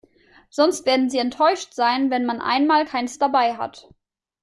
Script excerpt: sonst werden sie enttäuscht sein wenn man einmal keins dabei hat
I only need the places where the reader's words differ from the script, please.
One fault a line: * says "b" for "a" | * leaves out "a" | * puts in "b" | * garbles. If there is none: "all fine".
all fine